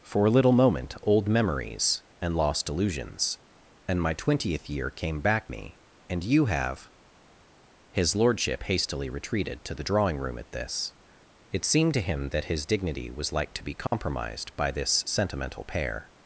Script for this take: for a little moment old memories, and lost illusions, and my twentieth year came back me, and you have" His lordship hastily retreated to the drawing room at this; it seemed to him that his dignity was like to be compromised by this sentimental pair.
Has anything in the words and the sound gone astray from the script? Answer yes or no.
yes